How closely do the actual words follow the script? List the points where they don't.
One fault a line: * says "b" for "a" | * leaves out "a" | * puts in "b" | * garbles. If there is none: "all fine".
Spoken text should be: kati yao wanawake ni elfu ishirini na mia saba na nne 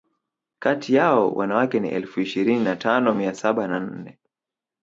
* puts in "tano"